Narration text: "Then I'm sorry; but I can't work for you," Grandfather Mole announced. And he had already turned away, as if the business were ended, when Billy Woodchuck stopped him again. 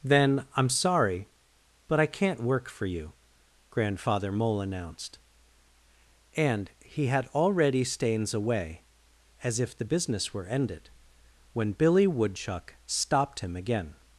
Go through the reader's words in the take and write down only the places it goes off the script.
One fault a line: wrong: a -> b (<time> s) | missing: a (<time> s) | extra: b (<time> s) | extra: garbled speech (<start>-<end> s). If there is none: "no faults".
wrong: turned -> stains (7.8 s)